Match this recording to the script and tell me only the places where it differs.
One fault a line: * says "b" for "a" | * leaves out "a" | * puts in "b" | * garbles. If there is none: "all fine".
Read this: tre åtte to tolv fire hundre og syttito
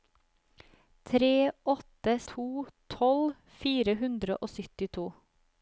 all fine